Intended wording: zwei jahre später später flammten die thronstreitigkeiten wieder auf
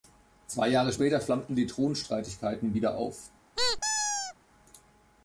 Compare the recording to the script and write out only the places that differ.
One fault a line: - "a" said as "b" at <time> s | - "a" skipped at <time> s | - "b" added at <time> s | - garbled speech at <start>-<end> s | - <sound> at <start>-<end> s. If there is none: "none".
- "später" skipped at 1.2 s
- squeak at 3.6-4.3 s